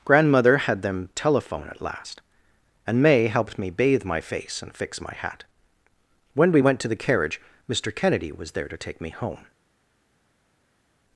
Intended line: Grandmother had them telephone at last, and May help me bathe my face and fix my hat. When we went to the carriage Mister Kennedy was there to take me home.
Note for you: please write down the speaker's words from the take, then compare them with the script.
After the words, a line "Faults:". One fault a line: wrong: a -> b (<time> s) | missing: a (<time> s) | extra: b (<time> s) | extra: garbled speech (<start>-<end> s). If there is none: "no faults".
Grandmother had them telephone at last, and May helped me bathe my face and fix my hat. When we went to the carriage Mister Kennedy was there to take me home.
Faults:
wrong: help -> helped (3.3 s)